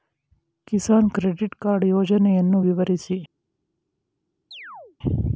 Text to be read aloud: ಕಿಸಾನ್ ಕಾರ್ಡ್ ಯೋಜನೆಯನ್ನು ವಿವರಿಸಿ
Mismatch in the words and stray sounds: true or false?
true